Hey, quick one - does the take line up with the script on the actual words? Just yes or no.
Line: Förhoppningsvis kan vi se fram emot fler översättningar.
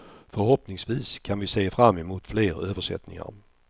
yes